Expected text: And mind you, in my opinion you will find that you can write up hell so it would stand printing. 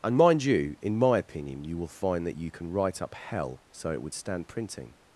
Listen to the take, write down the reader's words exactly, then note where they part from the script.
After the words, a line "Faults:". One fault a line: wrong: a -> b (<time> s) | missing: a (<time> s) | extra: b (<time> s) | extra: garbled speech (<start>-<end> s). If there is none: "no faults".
And mind you, in my opinion you will find that you can write up hell so it would stand printing.
Faults:
no faults